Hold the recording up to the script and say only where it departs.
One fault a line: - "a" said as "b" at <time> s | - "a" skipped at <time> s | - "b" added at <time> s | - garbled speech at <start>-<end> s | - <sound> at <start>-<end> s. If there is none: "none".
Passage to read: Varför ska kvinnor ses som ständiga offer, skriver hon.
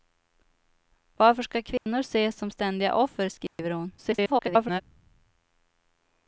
- dropout at 1.8-1.9 s
- dropout at 3.5-3.6 s
- garbled speech at 4.0-4.8 s